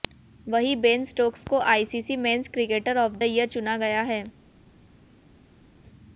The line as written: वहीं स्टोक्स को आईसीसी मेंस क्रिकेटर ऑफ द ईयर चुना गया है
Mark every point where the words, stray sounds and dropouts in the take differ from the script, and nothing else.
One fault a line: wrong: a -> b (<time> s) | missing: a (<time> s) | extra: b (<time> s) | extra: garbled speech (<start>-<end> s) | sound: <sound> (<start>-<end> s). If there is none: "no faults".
extra: बेन (0.8 s)